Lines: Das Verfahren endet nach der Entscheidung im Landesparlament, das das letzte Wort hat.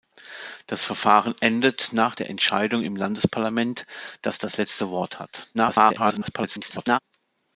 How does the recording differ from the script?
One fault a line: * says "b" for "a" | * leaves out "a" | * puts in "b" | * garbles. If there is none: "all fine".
* garbles